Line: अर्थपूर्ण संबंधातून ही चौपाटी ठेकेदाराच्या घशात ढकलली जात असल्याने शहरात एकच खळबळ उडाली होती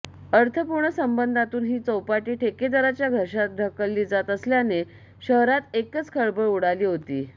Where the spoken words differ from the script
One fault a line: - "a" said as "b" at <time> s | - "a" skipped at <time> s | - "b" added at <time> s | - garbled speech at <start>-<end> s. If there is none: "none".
none